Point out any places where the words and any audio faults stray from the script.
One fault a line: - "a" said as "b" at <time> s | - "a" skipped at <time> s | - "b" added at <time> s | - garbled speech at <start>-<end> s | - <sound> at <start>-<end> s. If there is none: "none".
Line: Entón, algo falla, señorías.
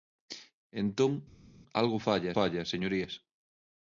- "falla" added at 2.4 s